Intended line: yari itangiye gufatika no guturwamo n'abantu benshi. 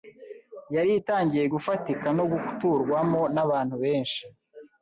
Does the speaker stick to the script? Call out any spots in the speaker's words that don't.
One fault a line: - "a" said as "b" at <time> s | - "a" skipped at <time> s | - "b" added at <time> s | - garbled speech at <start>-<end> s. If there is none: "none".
none